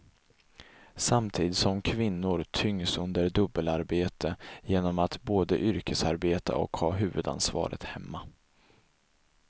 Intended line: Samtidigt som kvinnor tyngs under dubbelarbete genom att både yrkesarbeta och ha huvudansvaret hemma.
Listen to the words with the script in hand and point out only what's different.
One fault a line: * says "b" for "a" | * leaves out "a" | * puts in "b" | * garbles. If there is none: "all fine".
all fine